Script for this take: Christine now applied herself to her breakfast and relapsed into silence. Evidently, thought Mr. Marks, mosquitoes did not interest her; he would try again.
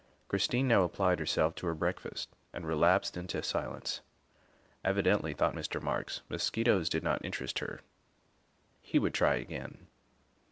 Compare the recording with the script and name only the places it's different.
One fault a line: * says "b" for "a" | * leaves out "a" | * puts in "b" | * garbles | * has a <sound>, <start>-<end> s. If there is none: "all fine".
all fine